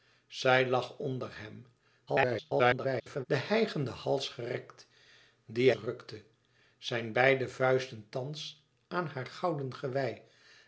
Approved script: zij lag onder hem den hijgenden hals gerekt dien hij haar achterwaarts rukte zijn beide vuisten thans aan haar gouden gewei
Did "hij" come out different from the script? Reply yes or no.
yes